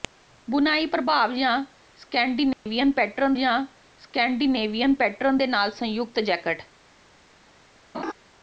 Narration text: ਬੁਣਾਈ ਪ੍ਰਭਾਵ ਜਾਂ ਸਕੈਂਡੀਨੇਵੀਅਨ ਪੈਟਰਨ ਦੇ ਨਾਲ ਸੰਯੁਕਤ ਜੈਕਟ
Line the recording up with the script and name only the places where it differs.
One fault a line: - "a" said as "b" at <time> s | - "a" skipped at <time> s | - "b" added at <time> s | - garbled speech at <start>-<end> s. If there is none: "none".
- "ਜਾਂ ਸਕੈਂਡੀਨੇਵੀਅਨ ਪੈਟਰਨ" added at 3.4 s